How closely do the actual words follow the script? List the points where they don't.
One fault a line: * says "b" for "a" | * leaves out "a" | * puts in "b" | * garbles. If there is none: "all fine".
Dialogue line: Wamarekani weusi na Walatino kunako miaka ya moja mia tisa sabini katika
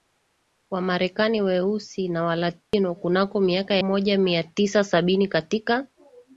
all fine